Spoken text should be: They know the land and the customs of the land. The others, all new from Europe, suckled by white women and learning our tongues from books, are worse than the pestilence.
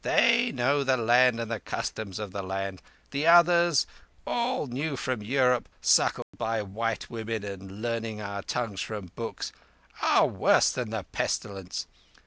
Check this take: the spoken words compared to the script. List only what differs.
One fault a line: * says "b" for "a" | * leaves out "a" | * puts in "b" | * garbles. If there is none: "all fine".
all fine